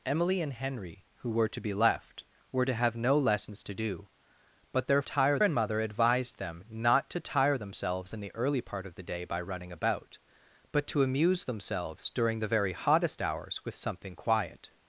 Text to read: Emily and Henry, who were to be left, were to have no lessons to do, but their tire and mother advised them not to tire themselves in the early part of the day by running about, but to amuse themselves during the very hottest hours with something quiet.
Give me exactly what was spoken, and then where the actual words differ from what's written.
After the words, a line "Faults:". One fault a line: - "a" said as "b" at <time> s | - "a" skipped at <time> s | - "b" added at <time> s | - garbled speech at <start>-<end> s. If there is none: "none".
Emily and Henry, who were to be left, were to have no lessons to do, but their tire and mother advised them not to tire themselves in the early part of the day by running about, but to amuse themselves during the very hottest hours with something quiet.
Faults:
none